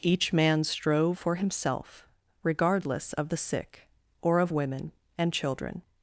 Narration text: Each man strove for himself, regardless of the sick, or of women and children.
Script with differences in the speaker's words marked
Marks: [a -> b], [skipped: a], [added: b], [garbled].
Each man strove for himself, regardless of the sick, or of women and children.